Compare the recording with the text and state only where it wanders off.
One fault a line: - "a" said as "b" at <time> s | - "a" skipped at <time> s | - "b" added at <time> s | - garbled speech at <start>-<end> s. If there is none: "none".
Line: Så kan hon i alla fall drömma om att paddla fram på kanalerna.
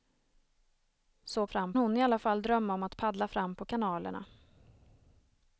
- "kan" said as "fram" at 1.5 s